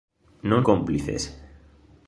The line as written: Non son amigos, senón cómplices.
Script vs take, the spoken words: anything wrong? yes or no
yes